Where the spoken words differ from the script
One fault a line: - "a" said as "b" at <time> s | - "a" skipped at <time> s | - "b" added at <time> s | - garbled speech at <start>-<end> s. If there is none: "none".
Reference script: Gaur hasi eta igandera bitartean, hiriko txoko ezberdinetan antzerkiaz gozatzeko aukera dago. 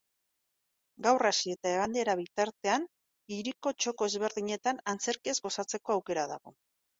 none